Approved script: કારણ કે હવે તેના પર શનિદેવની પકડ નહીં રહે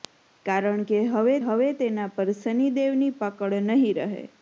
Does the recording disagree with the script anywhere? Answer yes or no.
yes